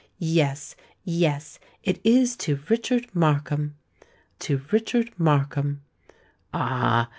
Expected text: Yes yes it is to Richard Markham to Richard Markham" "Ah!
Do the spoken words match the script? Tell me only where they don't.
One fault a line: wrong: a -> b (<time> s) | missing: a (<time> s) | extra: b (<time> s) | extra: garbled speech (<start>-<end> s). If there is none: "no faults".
no faults